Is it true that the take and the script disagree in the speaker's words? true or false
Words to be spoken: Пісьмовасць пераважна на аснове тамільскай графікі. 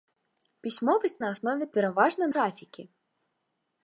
true